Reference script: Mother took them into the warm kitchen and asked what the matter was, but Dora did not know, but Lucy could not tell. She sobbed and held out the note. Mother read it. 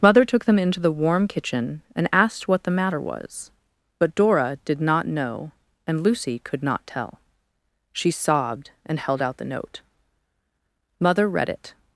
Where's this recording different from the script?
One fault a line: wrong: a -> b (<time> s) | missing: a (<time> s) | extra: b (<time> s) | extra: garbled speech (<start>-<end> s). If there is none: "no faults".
wrong: but -> and (5.8 s)